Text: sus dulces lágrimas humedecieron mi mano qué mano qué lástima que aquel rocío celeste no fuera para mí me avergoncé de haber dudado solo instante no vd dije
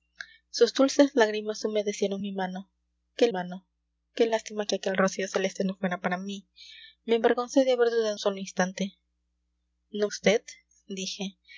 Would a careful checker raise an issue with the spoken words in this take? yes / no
no